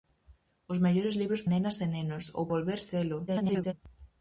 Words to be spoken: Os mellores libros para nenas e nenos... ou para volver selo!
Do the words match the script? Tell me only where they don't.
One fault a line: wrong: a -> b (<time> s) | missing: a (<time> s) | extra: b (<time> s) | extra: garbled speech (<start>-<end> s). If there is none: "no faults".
missing: para (1.4 s)
missing: para (2.4 s)
extra: garbled speech (3.3-3.7 s)